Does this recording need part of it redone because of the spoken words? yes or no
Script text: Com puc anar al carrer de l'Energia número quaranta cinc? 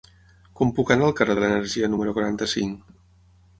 no